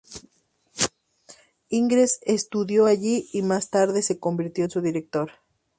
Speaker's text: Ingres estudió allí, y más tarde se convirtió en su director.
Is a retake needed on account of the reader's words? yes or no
no